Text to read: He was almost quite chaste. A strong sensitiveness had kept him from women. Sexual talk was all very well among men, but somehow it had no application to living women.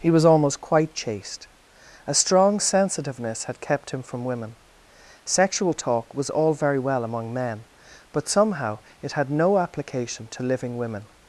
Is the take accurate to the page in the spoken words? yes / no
yes